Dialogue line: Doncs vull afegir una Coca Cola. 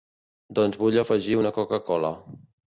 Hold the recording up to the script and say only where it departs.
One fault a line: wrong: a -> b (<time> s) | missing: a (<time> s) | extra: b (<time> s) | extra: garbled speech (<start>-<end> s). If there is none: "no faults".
no faults